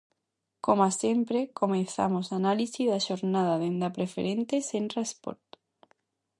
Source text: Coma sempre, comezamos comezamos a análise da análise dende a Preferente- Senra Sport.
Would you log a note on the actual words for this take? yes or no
yes